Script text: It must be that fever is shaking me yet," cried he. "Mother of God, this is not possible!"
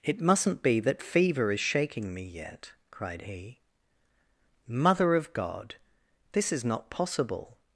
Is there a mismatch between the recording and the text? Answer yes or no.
yes